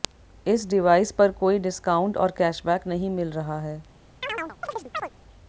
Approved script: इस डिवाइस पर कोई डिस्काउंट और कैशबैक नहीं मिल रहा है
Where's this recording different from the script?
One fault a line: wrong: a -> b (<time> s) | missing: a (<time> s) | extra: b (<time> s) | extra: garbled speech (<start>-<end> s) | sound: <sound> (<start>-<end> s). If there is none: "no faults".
sound: chirp (4.2-5.1 s)